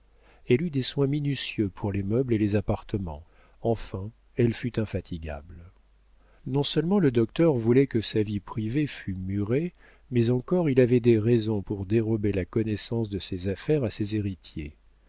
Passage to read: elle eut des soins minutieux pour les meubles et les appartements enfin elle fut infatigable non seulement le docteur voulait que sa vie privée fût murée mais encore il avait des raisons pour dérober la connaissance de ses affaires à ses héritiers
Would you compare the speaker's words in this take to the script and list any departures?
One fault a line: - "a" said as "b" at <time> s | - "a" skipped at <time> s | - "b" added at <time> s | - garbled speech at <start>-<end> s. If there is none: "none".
none